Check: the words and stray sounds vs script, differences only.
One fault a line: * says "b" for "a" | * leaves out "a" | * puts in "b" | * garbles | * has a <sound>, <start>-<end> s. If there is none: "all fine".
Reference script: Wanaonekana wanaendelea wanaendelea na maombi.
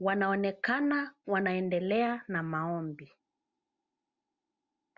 * leaves out "wanaendelea"